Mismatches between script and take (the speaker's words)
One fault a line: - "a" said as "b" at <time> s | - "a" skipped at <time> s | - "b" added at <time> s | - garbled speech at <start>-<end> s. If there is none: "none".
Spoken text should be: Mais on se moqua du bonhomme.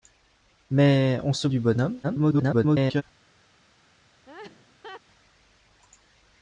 - "moqua" skipped at 1.5 s
- garbled speech at 2.0-3.0 s